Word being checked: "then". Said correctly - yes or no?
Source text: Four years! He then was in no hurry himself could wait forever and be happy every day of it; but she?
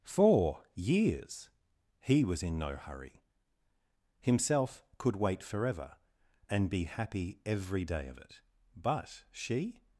no